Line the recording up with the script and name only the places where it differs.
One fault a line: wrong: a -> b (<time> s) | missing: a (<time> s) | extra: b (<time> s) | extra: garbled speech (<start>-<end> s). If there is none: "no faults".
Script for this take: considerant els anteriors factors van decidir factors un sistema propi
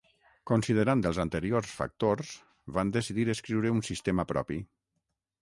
wrong: factors -> escriure (3.3 s)